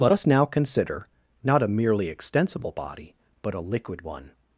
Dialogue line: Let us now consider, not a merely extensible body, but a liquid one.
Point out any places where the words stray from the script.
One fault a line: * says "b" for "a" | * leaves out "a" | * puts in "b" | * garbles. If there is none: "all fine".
all fine